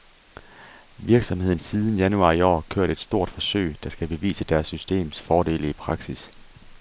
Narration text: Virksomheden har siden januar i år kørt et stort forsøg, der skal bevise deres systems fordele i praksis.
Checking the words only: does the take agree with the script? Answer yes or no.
no